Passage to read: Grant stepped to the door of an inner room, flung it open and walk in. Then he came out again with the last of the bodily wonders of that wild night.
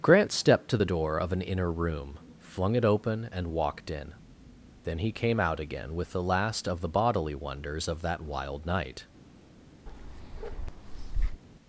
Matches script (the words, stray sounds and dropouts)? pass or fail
fail